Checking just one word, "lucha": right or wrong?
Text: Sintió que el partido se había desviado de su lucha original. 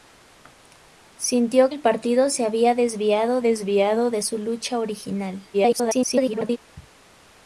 right